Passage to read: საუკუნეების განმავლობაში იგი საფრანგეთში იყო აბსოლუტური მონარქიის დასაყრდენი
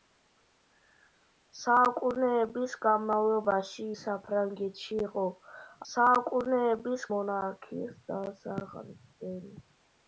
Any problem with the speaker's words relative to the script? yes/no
yes